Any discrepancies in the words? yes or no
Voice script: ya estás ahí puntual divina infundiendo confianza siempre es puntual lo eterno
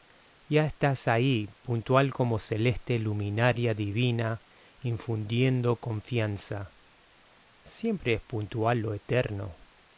yes